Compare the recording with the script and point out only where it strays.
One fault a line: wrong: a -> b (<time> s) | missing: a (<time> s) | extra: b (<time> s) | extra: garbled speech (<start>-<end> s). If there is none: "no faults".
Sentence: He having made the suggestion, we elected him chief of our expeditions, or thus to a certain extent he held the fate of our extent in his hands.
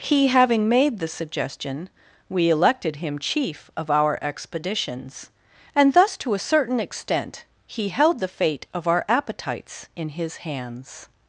wrong: or -> and (5.8 s)
wrong: extent -> appetites (9.1 s)